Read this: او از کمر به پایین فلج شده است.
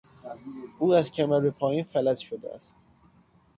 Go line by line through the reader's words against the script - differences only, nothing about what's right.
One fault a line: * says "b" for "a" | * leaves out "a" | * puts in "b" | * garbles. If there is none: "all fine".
all fine